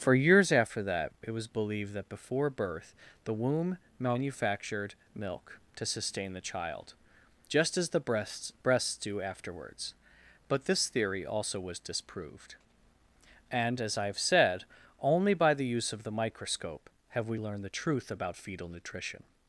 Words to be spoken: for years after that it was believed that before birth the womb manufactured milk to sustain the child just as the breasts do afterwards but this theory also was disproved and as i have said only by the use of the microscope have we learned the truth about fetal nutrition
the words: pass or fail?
fail